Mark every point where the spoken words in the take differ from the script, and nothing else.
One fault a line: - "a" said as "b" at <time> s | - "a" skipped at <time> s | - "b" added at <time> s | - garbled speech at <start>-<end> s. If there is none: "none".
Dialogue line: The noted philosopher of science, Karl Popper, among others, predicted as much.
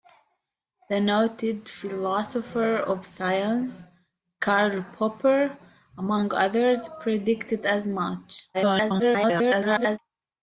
- garbled speech at 8.5-10.0 s